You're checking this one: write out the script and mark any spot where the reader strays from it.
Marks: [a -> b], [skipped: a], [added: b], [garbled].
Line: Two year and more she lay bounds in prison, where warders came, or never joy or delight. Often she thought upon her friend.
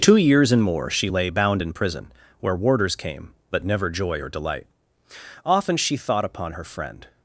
Two [year -> years] and more she lay [bounds -> bound] in prison, where warders came, [or -> but] never joy or delight. Often she thought upon her friend.